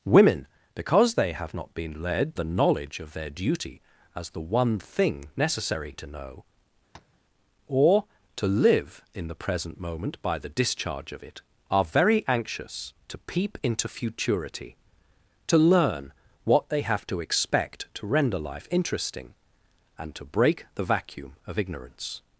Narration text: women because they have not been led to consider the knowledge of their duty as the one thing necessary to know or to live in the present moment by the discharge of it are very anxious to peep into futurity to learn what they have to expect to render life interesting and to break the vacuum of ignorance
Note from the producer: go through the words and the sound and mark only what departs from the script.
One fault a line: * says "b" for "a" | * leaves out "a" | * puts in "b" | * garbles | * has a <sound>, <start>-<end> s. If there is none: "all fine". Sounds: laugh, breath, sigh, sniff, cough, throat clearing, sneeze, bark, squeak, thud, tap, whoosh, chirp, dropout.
* leaves out "to consider"
* has a tap, 6.9-7.2 s